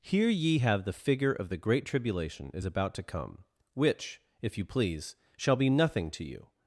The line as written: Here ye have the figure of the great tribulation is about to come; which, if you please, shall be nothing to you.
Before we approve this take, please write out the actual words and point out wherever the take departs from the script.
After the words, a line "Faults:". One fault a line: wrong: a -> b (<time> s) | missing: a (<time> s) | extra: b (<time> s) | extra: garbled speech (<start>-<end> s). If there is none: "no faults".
Here ye have the figure of the great tribulation is about to come; which, if you please, shall be nothing to you.
Faults:
no faults